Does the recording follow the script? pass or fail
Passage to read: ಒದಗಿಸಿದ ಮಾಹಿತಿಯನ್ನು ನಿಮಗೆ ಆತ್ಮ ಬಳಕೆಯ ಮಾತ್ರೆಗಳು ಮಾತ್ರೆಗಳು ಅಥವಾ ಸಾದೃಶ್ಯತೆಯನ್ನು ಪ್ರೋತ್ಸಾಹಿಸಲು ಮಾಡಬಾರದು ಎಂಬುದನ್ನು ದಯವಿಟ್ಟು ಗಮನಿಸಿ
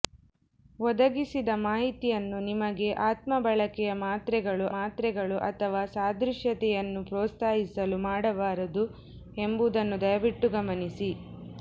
pass